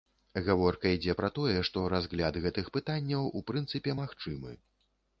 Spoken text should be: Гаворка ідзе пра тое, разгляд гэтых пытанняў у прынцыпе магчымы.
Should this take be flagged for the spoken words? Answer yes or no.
yes